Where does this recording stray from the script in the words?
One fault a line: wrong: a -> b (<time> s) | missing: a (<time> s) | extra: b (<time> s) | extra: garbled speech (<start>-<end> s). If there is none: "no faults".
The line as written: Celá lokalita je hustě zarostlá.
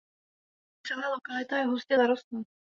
no faults